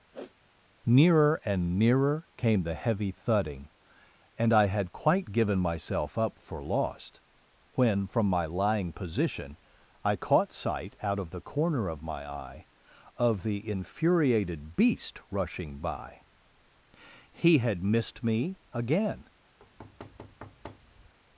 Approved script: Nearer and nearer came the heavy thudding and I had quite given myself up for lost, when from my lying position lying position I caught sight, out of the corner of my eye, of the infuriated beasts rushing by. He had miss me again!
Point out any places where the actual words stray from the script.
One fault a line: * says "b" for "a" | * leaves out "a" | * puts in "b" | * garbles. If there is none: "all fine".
* leaves out "lying position"
* says "beast" for "beasts"
* says "missed" for "miss"